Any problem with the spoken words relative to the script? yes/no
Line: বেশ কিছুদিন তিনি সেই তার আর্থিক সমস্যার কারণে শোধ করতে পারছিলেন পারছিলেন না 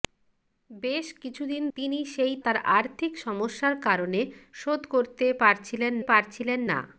no